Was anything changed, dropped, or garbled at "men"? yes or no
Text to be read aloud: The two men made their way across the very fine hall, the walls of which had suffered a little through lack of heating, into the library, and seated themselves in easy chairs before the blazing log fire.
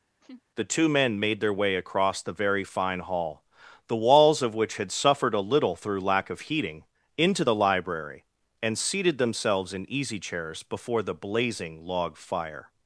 no